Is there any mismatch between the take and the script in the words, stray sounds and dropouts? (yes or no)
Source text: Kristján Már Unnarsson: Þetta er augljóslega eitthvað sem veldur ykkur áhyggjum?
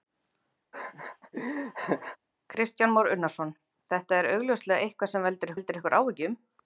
yes